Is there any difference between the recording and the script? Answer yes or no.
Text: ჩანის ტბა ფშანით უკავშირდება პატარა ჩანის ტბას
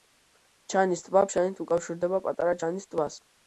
no